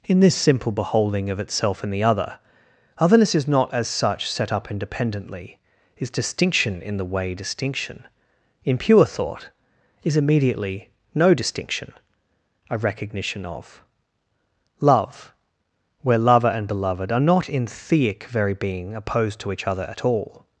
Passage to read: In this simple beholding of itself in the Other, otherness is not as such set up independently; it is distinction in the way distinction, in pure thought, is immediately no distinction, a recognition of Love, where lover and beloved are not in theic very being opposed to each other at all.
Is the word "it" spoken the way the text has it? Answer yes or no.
no